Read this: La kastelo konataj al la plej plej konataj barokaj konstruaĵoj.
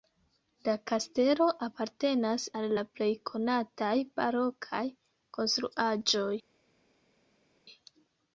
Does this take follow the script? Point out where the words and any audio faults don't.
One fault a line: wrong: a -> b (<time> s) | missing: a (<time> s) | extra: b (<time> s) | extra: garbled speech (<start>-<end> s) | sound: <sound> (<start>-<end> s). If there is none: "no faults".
wrong: konataj -> apartenas (1.7 s)
missing: plej (3.1 s)